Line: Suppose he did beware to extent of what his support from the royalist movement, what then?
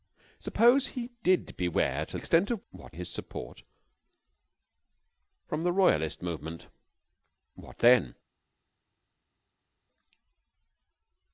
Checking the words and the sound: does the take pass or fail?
pass